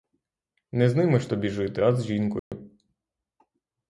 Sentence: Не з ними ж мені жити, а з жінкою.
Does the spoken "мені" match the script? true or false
false